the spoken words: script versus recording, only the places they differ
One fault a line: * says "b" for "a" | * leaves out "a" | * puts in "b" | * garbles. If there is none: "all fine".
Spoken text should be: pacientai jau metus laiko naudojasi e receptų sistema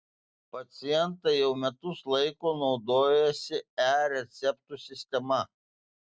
all fine